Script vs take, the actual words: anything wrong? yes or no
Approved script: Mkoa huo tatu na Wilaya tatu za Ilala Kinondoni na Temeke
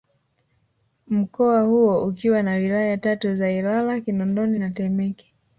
yes